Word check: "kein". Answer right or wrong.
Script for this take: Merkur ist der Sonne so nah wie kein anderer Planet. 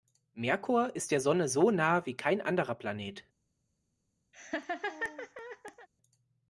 right